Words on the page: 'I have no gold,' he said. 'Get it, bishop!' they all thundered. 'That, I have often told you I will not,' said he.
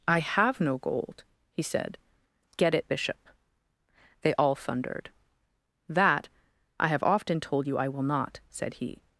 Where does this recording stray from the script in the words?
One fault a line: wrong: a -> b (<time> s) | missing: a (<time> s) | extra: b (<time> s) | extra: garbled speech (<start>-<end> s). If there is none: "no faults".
no faults